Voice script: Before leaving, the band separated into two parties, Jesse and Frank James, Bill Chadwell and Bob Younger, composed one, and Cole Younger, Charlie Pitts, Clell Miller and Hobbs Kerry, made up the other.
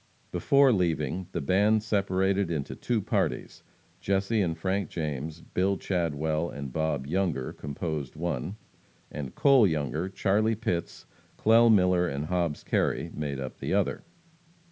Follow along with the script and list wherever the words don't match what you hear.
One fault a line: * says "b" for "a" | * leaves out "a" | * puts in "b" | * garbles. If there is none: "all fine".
all fine